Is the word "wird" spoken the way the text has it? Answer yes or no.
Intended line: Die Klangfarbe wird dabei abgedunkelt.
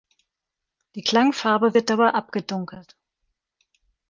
yes